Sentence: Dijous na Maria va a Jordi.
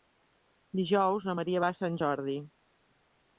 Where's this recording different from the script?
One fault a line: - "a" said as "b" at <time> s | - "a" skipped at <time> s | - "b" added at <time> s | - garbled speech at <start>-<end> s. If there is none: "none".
- "Sant" added at 1.8 s